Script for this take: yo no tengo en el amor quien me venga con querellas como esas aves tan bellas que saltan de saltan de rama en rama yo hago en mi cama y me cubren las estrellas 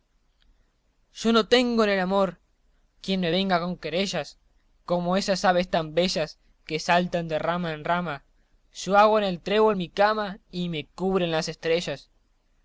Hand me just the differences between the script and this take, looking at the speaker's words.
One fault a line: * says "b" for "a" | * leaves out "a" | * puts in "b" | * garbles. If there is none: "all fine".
* leaves out "saltan de"
* puts in "el trébol"